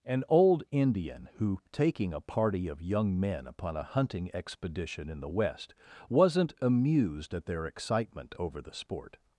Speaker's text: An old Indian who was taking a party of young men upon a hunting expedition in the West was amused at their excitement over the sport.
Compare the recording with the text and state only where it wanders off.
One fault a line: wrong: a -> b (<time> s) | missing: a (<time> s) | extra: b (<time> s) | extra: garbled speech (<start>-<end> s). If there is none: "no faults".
missing: was (1.6 s)
wrong: was -> wasn't (6.1 s)